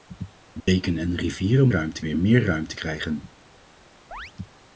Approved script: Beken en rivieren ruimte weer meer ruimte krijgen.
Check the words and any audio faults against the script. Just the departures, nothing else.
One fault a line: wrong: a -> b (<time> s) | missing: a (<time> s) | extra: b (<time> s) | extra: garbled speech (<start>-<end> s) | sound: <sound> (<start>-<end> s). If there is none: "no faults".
sound: dropout (0.6-0.7 s)
sound: chirp (4.1-4.3 s)